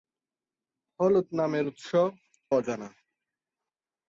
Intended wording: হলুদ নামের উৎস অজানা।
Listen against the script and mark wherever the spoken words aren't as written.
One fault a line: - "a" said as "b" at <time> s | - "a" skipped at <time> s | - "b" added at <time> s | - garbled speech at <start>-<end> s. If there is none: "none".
none